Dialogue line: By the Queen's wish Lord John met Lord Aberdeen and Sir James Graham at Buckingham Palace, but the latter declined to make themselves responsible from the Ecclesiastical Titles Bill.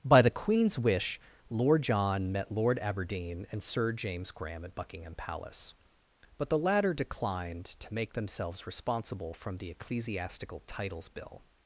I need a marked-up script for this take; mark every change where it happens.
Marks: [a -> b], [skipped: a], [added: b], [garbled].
By the Queen's wish Lord John met Lord Aberdeen and Sir James Graham at Buckingham Palace, but the latter declined to make themselves responsible from the Ecclesiastical Titles Bill.